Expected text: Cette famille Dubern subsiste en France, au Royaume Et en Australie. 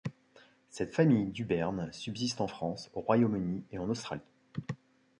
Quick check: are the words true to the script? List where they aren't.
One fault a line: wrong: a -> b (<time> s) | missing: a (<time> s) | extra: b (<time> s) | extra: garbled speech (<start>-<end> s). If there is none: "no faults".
extra: Uni (3.4 s)